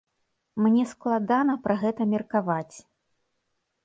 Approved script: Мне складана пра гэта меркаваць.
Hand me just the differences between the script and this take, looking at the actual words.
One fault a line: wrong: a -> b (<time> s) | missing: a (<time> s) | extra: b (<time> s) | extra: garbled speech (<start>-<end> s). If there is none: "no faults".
no faults